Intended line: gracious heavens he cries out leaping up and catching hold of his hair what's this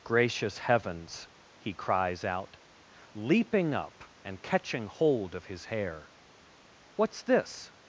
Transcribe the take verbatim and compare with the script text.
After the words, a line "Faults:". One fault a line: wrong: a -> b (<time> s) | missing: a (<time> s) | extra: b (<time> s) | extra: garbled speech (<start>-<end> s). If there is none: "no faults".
gracious heavens he cries out leaping up and catching hold of his hair what's this
Faults:
no faults